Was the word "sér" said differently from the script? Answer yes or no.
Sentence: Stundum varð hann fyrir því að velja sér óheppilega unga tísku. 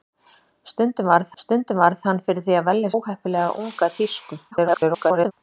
yes